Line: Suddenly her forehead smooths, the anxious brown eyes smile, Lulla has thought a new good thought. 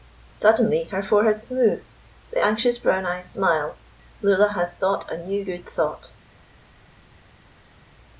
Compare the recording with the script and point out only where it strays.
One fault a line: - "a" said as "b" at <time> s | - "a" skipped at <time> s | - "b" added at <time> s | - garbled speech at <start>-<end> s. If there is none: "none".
none